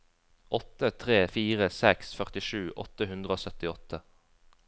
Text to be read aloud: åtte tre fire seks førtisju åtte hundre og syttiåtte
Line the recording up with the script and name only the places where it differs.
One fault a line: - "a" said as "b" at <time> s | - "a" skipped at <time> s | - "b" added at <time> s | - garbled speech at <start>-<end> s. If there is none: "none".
none